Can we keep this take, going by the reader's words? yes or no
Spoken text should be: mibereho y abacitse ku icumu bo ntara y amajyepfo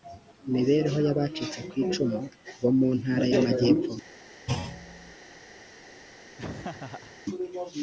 no